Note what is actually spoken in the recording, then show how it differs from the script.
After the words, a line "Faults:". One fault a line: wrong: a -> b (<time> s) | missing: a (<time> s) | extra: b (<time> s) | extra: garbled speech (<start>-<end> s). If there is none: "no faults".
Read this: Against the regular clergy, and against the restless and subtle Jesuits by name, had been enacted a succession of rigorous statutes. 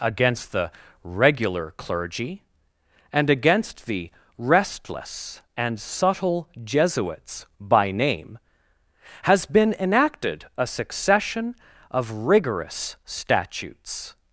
Against the regular clergy, and against the restless and subtle Jesuits by name, has been enacted a succession of rigorous statutes.
Faults:
wrong: had -> has (9.2 s)